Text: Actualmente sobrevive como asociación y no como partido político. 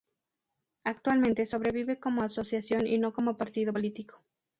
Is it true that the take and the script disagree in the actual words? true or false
false